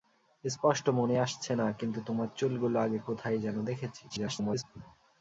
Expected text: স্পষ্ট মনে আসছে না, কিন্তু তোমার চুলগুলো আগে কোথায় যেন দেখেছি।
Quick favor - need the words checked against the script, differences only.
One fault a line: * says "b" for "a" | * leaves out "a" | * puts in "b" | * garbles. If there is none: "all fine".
* garbles